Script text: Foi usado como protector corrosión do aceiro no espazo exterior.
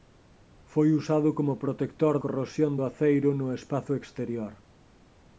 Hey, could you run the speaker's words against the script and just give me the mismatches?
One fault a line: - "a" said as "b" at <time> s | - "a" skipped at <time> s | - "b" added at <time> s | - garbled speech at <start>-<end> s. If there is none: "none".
none